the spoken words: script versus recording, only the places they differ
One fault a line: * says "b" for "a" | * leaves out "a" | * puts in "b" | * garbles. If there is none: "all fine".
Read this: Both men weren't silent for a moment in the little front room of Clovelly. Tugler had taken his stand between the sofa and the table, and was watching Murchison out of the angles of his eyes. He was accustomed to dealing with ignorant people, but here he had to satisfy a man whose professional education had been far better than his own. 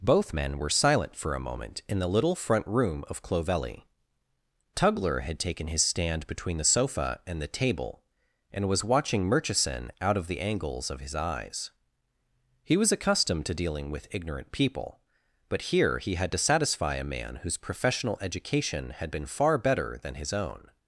* says "were" for "weren't"